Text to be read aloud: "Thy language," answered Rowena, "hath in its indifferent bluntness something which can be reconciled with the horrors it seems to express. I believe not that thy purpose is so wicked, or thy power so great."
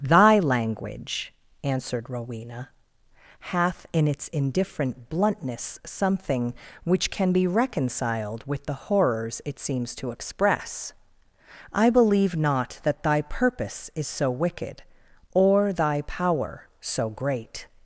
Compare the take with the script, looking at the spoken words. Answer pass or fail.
pass